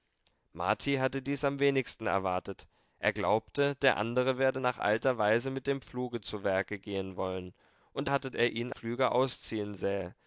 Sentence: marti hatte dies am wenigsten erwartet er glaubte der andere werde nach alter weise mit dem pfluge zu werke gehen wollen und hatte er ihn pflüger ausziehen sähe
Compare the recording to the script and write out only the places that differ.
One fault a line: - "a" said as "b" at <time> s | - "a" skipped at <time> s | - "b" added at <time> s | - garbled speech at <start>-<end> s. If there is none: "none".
none